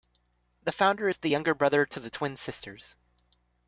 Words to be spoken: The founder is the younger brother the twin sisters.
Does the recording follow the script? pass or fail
fail